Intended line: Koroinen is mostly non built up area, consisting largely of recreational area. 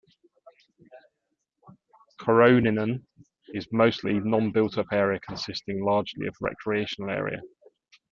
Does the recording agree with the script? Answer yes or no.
yes